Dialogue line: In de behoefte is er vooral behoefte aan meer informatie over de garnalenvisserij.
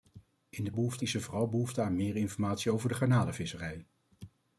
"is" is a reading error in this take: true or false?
false